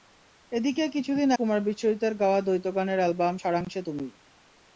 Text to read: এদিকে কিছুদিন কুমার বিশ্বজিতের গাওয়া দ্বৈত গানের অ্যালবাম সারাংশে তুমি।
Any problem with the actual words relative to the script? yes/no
no